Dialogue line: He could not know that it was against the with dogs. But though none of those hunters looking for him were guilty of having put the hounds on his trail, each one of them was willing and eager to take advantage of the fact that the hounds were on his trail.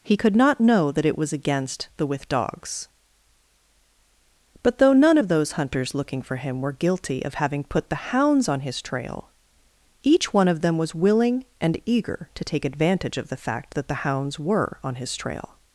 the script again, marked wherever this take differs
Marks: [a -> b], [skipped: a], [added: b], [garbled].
He could not know that it was against the with dogs. But though none of those hunters looking for him were guilty of having put the hounds on his trail, each one of them was willing and eager to take advantage of the fact that the hounds were on his trail.